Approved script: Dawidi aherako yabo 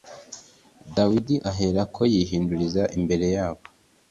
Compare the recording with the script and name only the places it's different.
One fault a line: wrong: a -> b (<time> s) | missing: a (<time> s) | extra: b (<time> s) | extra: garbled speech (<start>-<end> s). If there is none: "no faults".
extra: yihinduriza imbere (2.1 s)